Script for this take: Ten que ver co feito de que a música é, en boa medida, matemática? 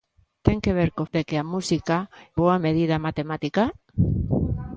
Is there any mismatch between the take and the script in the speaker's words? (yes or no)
yes